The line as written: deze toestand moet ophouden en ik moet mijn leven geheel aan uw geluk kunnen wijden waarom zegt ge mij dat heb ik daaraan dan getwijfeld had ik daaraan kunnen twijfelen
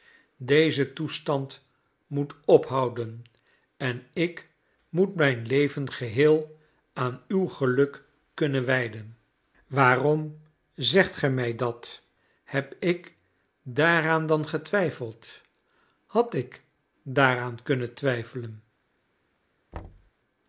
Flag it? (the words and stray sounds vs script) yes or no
yes